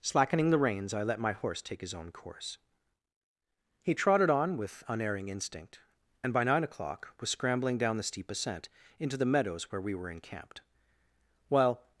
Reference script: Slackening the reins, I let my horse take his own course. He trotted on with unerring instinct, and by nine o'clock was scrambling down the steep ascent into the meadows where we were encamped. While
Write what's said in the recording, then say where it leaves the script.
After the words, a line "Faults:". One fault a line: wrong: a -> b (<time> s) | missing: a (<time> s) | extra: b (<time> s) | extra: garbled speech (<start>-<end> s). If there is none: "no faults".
Slackening the reins, I let my horse take his own course. He trotted on with unerring instinct, and by nine o'clock was scrambling down the steep ascent into the meadows where we were encamped. While
Faults:
no faults